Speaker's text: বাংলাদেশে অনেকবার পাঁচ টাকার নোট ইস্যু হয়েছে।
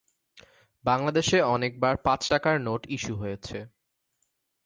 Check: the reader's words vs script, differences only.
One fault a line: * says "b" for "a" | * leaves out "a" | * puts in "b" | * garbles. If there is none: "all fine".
all fine